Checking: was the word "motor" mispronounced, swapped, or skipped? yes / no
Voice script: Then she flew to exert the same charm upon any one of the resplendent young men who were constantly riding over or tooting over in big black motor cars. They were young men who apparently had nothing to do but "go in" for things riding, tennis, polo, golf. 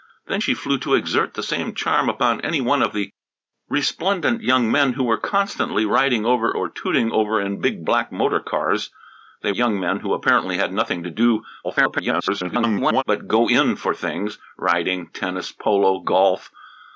no